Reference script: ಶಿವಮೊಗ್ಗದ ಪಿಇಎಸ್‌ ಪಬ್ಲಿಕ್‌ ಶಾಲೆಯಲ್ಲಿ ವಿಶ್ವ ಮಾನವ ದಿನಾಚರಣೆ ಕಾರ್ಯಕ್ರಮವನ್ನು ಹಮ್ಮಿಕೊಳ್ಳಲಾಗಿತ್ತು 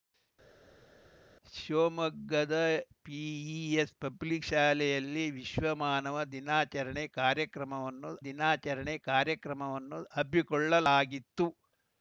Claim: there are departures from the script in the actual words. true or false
true